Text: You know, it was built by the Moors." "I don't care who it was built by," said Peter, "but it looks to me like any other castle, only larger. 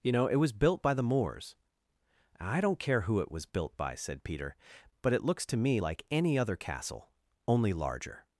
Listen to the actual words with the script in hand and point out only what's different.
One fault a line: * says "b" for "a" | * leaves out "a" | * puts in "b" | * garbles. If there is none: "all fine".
all fine